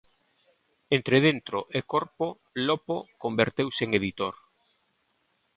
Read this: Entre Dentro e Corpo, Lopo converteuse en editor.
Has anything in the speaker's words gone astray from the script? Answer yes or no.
no